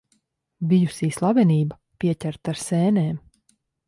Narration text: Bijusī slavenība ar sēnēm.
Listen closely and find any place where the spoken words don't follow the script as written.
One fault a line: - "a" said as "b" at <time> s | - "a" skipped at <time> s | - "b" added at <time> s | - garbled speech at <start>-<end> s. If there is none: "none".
- "pieķerta" added at 2.0 s